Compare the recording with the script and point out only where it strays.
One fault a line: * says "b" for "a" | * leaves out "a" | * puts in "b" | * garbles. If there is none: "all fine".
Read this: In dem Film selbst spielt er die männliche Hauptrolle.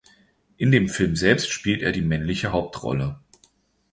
all fine